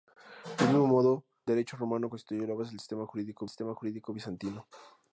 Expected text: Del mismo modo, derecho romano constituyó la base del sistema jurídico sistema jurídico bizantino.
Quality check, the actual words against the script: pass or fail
pass